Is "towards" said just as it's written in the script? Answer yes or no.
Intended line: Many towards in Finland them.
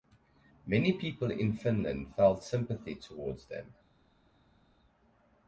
no